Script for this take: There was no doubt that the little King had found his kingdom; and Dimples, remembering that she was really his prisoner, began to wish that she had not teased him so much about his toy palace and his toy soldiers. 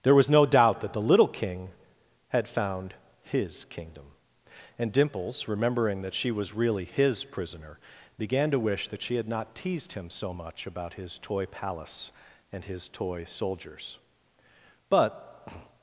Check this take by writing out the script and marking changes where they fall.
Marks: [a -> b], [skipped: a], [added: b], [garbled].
There was no doubt that the little King had found his kingdom; and Dimples, remembering that she was really his prisoner, began to wish that she had not teased him so much about his toy palace and his toy soldiers. [added: But]